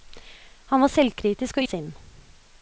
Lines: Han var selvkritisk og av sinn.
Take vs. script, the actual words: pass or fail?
pass